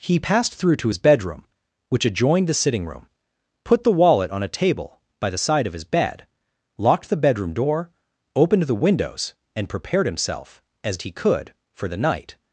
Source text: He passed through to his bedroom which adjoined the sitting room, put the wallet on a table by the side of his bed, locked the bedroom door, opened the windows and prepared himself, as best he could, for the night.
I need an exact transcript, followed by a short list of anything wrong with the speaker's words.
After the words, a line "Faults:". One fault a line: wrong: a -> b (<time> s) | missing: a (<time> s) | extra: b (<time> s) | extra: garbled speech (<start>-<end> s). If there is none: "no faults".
He passed through to his bedroom which adjoined the sitting room, put the wallet on a table by the side of his bed, locked the bedroom door, opened the windows and prepared himself, as he could, for the night.
Faults:
missing: best (11.0 s)